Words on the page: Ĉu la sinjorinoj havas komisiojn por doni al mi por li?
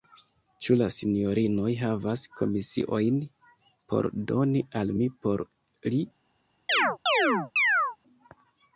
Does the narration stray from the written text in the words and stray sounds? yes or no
yes